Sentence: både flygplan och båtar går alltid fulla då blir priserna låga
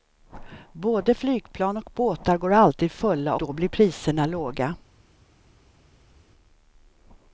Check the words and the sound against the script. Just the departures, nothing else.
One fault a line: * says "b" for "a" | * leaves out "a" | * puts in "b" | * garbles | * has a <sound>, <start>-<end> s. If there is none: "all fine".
all fine